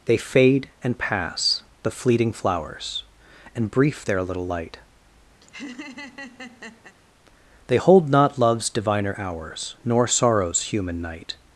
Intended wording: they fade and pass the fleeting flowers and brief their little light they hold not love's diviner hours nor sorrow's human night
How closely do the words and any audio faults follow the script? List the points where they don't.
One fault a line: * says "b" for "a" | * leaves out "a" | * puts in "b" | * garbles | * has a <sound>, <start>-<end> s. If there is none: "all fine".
* has a laugh, 5.4-7.0 s